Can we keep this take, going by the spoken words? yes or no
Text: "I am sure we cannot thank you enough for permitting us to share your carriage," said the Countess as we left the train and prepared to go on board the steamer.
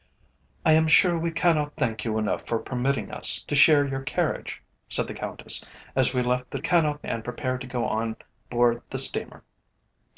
no